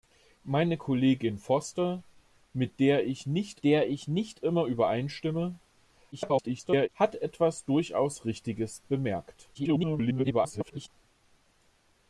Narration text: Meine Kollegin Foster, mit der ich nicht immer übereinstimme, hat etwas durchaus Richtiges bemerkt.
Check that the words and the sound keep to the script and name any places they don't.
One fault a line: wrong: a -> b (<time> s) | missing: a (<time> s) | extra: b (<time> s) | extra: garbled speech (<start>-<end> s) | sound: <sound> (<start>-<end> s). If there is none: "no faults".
extra: der ich nicht (3.6 s)
extra: garbled speech (6.1-6.9 s)
extra: garbled speech (9.5-10.9 s)